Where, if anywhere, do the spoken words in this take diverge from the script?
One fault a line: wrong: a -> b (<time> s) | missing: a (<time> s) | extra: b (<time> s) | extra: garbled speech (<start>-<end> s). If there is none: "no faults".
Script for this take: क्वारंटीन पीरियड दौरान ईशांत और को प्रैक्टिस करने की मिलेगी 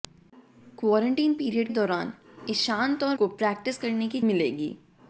no faults